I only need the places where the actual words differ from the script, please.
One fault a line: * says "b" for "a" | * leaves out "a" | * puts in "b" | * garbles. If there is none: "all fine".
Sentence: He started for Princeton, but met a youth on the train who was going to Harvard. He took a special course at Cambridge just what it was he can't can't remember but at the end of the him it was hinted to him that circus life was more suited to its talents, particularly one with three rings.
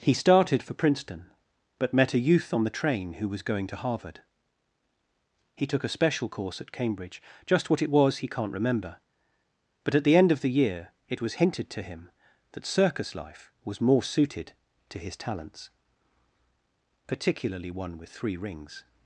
* leaves out "can't"
* says "year" for "him"
* says "his" for "its"